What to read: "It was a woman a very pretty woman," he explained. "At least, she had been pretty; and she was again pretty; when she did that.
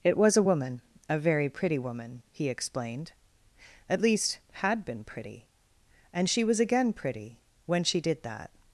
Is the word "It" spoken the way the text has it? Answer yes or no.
yes